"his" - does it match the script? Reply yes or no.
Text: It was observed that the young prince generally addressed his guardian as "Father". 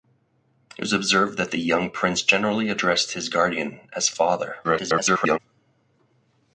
yes